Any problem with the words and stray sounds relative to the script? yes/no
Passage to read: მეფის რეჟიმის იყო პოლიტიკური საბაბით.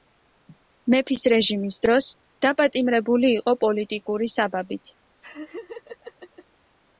yes